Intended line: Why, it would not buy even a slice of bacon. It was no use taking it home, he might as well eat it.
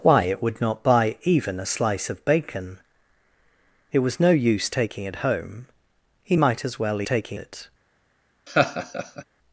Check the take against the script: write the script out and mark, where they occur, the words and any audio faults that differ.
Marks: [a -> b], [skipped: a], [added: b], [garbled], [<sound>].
Why, it would not buy even a slice of bacon. It was no use taking it home, he might as well [eat -> taking] it. [laugh]